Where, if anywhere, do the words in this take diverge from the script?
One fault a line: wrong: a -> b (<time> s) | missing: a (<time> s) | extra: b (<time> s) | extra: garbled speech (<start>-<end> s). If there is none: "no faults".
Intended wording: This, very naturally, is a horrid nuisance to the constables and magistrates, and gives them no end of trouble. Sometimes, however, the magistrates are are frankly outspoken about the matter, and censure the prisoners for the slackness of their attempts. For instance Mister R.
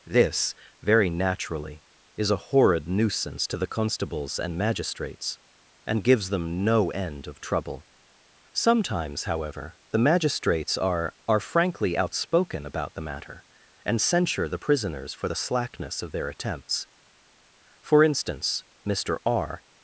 no faults